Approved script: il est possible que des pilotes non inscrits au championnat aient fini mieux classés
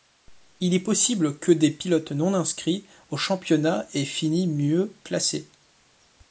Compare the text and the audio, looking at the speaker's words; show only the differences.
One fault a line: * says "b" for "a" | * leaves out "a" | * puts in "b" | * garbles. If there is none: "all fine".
all fine